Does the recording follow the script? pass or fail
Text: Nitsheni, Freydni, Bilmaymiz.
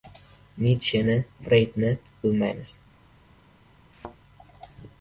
pass